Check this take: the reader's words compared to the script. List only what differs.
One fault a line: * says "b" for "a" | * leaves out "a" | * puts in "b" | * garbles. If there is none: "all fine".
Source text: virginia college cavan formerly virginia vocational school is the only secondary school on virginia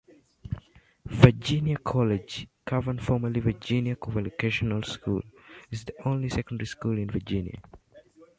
* says "in" for "on"